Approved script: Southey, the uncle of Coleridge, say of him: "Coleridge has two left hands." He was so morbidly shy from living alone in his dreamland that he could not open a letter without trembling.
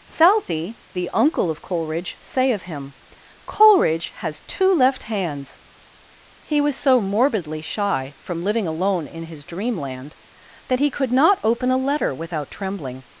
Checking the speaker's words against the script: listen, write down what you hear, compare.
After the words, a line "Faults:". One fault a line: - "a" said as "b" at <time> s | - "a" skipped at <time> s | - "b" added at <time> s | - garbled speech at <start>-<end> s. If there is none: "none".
Southey, the uncle of Coleridge, say of him: "Coleridge has two left hands." He was so morbidly shy from living alone in his dreamland that he could not open a letter without trembling.
Faults:
none